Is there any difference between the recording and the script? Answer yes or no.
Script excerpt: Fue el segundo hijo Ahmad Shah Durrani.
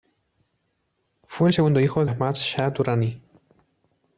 no